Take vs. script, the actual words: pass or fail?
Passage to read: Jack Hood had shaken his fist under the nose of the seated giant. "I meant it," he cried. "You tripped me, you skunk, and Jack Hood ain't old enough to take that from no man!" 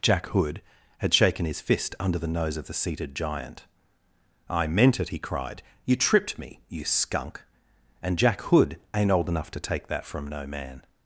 pass